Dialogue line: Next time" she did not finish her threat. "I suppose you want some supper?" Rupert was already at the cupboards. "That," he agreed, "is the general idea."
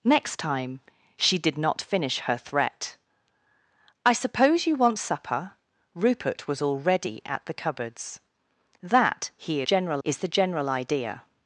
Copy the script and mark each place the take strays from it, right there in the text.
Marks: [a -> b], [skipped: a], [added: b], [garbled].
Next time" she did not finish her threat. "I suppose you want [skipped: some] supper?" Rupert was already at the cupboards. "That," he [agreed, -> general] "is the general idea."